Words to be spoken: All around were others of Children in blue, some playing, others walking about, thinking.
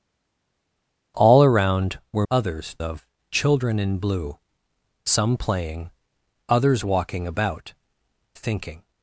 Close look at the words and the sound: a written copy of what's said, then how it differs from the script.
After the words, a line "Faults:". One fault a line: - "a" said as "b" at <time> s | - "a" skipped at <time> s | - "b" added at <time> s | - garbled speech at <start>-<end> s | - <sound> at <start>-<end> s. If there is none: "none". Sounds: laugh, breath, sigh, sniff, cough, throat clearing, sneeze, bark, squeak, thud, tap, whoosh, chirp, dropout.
All around were others of Children in blue, some playing, others walking about, thinking.
Faults:
none